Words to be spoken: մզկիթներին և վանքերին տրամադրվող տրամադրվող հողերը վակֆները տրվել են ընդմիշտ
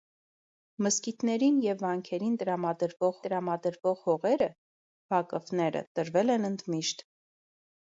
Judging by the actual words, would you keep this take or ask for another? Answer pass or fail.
pass